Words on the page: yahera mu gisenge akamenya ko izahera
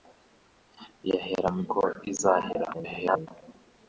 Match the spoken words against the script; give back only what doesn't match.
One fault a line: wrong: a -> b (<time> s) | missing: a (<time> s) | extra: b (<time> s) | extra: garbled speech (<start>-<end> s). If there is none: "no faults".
missing: gisenge akamenya (1.6 s)
extra: garbled speech (2.7-3.3 s)